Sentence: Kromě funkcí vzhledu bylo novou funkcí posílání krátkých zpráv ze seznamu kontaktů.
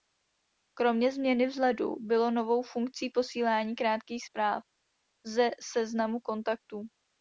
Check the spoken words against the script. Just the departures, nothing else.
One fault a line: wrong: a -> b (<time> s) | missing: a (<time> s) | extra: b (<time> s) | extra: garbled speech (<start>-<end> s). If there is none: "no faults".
wrong: funkcí -> změny (1.1 s)